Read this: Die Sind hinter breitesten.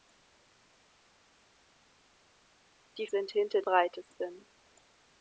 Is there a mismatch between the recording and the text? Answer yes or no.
no